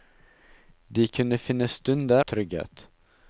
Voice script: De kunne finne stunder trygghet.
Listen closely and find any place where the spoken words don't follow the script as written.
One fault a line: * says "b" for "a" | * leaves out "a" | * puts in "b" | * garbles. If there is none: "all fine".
all fine